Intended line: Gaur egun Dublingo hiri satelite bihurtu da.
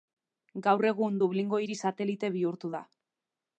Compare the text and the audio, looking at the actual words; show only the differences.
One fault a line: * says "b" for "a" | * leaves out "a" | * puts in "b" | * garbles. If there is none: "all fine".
all fine